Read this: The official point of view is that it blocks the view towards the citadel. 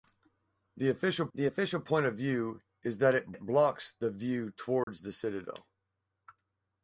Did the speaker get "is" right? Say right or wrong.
right